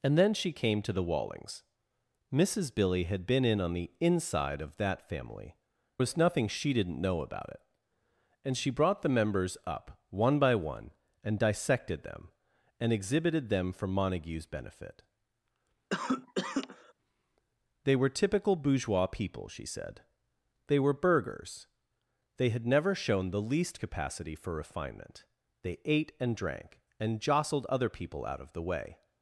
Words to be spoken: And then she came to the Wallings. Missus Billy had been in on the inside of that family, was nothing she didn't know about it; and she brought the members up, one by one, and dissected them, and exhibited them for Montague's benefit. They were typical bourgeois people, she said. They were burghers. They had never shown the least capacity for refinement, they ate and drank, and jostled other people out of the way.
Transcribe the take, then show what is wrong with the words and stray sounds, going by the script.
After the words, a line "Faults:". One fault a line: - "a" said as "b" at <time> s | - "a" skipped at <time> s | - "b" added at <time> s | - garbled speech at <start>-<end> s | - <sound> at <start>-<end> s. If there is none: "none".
And then she came to the Wallings. Missus Billy had been in on the inside of that family, was nothing she didn't know about it; and she brought the members up, one by one, and dissected them, and exhibited them for Montague's benefit. They were typical bourgeois people, she said. They were burghers. They had never shown the least capacity for refinement, they ate and drank, and jostled other people out of the way.
Faults:
- cough at 15.9-16.9 s